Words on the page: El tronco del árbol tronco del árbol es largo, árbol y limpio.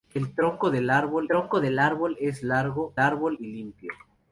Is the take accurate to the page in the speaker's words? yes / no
yes